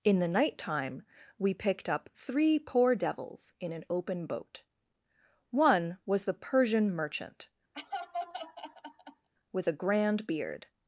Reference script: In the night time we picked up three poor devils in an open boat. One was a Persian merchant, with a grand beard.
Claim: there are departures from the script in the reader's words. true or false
true